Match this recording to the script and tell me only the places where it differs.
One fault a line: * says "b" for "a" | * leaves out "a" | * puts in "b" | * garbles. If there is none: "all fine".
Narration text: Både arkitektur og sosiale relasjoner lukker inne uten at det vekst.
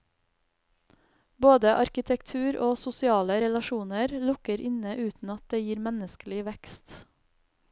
* puts in "gir menneskelig"